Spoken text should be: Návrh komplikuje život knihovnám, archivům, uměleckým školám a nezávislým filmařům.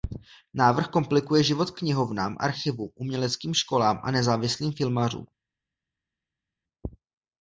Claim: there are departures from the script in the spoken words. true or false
false